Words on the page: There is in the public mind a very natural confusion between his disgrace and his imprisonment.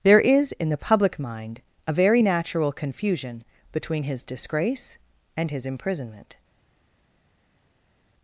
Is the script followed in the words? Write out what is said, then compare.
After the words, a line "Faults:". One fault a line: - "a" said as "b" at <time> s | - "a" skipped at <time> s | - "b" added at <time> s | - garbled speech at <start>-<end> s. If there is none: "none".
There is in the public mind a very natural confusion between his disgrace and his imprisonment.
Faults:
none